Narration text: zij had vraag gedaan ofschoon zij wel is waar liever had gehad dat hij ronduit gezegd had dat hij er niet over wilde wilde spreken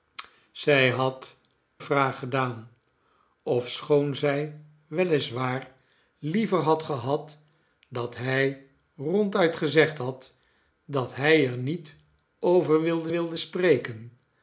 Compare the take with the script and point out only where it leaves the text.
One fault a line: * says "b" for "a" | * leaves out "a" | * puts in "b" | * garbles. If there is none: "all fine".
all fine